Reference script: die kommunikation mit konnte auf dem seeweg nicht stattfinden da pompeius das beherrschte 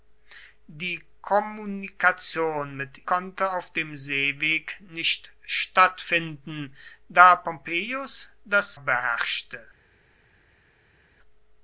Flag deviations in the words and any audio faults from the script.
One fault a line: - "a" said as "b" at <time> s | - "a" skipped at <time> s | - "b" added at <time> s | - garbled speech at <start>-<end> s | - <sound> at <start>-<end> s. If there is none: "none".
none